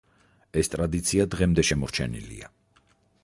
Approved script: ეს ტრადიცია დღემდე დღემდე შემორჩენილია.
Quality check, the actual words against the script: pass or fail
fail